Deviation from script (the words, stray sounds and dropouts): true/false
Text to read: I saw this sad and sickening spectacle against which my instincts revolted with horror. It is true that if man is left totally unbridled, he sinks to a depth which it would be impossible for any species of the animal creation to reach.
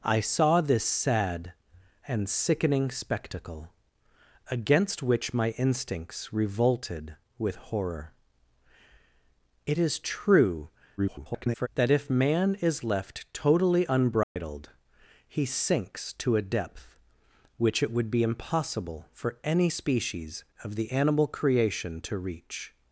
true